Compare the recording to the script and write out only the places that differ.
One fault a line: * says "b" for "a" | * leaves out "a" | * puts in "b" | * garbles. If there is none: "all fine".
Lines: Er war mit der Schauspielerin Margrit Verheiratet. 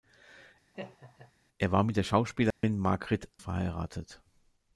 all fine